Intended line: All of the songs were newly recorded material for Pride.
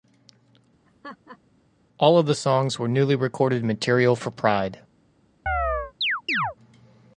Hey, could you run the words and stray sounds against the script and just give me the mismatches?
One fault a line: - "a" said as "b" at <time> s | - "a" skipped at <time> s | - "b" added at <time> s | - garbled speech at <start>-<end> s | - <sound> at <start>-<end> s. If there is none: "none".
- laugh at 0.9-1.4 s
- chirp at 5.5-6.6 s